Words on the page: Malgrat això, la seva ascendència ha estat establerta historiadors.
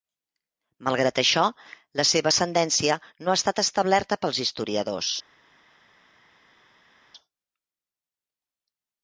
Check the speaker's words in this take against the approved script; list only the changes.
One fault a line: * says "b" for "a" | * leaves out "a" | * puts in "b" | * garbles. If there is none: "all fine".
* puts in "no"
* puts in "pels"